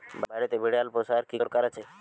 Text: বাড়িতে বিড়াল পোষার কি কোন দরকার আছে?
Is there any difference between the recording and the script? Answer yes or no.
yes